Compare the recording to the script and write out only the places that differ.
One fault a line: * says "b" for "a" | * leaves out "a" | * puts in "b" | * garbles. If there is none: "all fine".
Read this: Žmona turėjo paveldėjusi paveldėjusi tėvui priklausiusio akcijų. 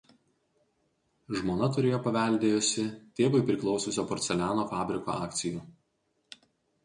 * leaves out "paveldėjusi"
* puts in "porceliano fabriko"